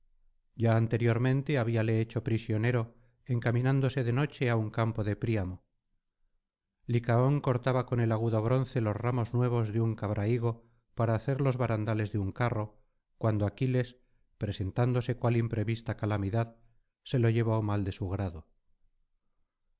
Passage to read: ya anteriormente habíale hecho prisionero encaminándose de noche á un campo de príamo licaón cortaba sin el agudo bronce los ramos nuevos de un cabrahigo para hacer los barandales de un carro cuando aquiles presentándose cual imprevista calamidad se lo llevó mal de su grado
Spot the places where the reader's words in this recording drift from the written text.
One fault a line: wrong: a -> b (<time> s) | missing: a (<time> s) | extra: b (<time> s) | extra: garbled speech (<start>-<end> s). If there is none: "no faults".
wrong: sin -> con (7.9 s)